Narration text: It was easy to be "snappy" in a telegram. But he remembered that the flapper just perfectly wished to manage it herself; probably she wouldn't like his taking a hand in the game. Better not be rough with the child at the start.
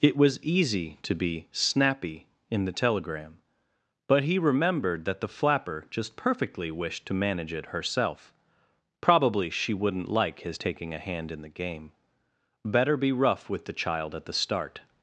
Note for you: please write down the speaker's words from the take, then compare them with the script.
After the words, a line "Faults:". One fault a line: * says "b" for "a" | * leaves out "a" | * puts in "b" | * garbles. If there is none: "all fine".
It was easy to be "snappy" in the telegram. But he remembered that the flapper just perfectly wished to manage it herself; probably she wouldn't like his taking a hand in the game. Better be rough with the child at the start.
Faults:
* says "the" for "a"
* leaves out "not"